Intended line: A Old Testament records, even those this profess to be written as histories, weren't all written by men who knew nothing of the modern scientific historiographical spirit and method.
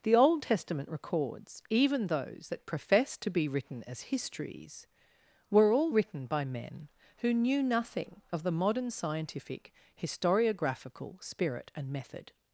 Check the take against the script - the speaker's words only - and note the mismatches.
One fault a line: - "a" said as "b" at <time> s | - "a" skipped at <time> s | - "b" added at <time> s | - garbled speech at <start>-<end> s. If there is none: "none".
- "A" said as "The" at 0.0 s
- "this" said as "that" at 2.5 s
- "weren't" said as "were" at 5.5 s